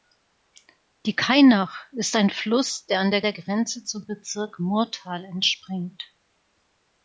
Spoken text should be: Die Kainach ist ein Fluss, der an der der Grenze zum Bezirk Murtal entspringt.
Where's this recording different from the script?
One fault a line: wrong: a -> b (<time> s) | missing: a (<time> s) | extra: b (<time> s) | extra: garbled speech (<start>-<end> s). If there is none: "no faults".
no faults